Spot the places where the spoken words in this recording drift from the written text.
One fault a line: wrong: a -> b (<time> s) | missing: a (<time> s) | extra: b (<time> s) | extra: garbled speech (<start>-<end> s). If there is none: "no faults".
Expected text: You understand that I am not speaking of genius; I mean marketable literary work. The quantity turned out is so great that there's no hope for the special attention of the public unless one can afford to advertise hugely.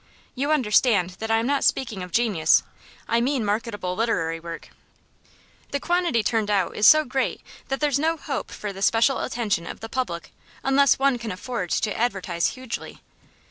no faults